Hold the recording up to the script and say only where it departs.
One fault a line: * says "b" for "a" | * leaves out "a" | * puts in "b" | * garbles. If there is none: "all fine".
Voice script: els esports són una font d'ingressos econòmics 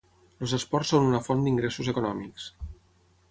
all fine